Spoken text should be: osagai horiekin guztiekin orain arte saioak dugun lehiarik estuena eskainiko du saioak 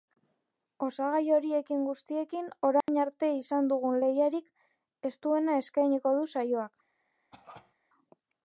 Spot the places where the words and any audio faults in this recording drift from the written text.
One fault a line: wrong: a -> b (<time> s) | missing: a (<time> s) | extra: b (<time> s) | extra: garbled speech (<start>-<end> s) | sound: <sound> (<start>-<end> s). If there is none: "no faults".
sound: dropout (2.8-2.9 s)
wrong: saioak -> izan (3.4 s)
sound: cough (7.3-7.7 s)